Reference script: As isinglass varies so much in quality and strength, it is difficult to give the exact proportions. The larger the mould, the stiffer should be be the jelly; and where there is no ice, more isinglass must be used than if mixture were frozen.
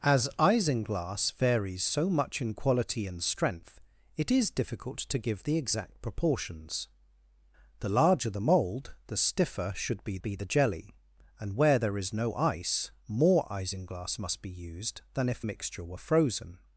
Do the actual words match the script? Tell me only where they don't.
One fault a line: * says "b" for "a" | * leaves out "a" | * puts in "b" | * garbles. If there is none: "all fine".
all fine